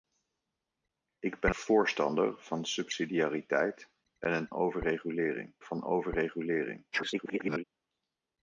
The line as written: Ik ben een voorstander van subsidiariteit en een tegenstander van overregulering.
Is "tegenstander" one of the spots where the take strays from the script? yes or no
yes